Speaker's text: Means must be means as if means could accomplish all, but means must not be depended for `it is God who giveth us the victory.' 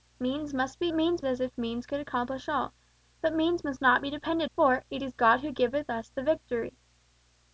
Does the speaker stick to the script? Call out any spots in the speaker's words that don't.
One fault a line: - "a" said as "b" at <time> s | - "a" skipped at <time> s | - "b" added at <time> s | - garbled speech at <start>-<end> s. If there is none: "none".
none